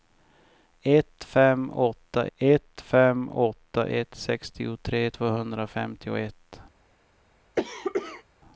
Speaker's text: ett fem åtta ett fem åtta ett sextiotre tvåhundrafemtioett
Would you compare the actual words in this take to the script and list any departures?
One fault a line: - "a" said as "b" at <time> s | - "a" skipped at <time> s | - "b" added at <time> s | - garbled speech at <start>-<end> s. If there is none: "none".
none